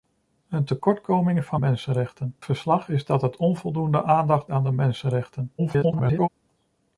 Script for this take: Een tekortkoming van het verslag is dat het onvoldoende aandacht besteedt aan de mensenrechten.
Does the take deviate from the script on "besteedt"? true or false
true